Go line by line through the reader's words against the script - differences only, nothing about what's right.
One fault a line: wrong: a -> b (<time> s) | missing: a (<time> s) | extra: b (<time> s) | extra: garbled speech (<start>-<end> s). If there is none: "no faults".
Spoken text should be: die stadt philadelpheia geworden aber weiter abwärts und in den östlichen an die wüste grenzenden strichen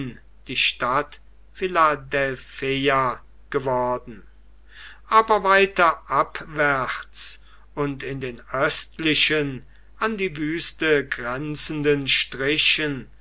no faults